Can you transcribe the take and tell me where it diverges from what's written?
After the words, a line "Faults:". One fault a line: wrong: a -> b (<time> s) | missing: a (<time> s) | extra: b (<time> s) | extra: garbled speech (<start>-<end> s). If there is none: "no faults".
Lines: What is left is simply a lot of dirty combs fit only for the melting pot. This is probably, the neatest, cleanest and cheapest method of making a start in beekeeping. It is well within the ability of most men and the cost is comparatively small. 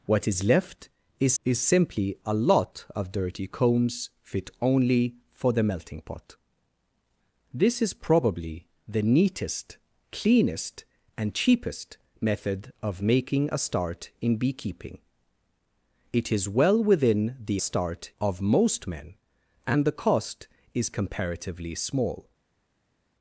What is left is is simply a lot of dirty combs fit only for the melting pot. This is probably, the neatest, cleanest and cheapest method of making a start in beekeeping. It is well within the start of most men and the cost is comparatively small.
Faults:
extra: is (1.4 s)
wrong: ability -> start (17.6 s)